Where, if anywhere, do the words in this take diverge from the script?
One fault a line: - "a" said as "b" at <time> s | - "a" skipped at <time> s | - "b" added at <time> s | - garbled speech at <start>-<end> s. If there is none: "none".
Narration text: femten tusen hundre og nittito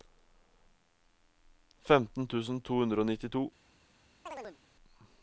- "to" added at 2.7 s